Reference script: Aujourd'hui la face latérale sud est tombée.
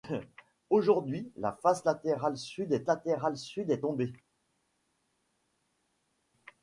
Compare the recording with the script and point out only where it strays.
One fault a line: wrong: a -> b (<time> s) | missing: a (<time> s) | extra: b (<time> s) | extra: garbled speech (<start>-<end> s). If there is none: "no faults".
extra: latérale sud est (2.9 s)